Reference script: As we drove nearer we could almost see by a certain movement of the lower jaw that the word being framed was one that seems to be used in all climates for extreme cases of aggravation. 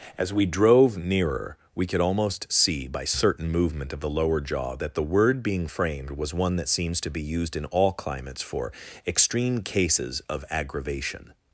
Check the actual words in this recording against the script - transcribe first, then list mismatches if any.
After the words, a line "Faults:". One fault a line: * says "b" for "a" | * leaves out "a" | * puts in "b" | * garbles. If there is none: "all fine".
As we drove nearer we could almost see by certain movement of the lower jaw that the word being framed was one that seems to be used in all climates for extreme cases of aggravation.
Faults:
* leaves out "a"